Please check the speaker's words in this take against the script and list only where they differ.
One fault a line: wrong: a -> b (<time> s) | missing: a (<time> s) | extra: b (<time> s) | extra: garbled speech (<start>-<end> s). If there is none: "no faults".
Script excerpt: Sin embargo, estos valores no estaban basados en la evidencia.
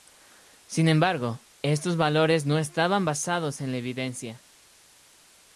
no faults